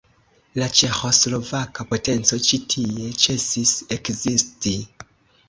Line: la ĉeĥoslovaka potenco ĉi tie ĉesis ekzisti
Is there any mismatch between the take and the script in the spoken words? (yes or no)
no